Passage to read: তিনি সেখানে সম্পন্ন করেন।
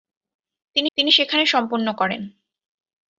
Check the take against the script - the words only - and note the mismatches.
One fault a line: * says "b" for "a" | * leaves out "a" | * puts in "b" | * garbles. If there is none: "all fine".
* puts in "তিনি"